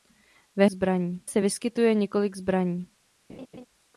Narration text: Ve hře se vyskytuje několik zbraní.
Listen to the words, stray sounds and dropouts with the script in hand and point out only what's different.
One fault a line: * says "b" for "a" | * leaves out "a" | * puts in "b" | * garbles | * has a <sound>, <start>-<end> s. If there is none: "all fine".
* says "zbraní" for "hře"
* has a laugh, 3.3-3.7 s